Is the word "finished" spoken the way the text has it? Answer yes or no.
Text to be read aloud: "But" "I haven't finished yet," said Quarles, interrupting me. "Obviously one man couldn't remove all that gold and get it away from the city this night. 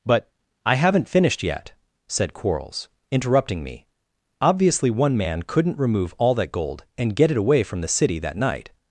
yes